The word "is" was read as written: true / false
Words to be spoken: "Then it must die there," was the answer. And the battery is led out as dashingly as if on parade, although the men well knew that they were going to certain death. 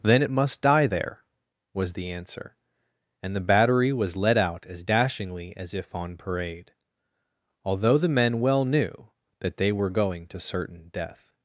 false